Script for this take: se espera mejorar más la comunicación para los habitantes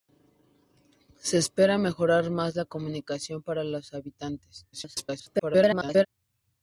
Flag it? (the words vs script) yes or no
yes